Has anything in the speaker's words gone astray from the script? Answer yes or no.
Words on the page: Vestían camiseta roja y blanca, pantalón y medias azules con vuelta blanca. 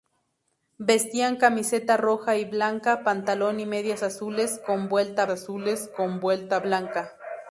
yes